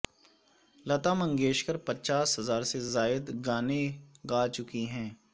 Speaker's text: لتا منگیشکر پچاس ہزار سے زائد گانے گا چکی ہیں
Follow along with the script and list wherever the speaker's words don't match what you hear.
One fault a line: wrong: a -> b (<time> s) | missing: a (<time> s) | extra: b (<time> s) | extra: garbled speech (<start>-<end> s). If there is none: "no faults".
no faults